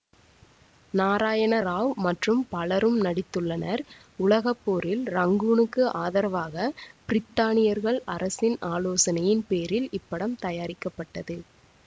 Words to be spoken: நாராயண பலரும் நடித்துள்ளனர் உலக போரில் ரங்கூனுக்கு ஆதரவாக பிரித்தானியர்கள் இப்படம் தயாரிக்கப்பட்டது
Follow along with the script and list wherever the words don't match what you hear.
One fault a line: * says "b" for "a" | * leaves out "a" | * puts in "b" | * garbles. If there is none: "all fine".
* puts in "ராவ் மற்றும்"
* puts in "அரசின் ஆலோசனையின் பேரில்"